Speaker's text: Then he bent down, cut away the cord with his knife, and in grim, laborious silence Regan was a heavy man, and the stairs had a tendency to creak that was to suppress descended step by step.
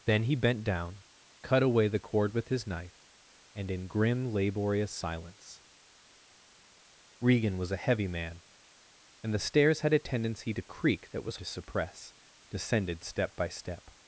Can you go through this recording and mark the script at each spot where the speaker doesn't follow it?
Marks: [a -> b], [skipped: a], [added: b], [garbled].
Then he bent down, cut away the cord with his knife, and in grim, laborious silence Regan was a heavy man, and the stairs had a tendency to creak that was to suppress descended step by step.